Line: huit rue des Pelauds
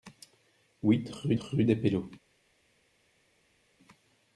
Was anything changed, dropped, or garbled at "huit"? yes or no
no